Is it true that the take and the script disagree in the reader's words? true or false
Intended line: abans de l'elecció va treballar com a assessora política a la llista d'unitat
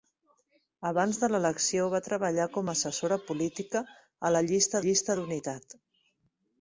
true